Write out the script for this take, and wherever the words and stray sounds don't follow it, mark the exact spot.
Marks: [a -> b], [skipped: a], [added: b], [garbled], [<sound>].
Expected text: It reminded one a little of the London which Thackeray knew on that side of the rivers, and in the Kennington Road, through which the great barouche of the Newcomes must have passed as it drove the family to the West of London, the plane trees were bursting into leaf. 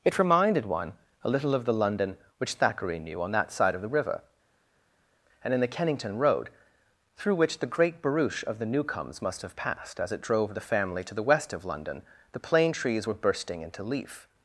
It reminded one a little of the London which Thackeray knew on that side of the [rivers, -> river] and in the Kennington Road, through which the great barouche of the Newcomes must have passed as it drove the family to the West of London, the plane trees were bursting into leaf.